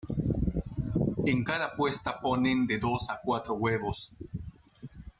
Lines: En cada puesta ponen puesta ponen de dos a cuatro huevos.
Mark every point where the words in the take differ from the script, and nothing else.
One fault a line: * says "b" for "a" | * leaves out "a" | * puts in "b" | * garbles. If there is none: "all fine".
* leaves out "puesta ponen"